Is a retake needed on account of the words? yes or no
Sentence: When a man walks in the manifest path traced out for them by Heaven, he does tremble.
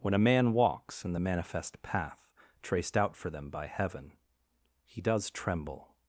no